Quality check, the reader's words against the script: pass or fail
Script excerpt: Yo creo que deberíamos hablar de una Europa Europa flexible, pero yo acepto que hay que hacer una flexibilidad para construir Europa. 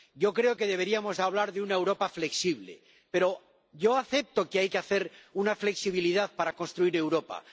fail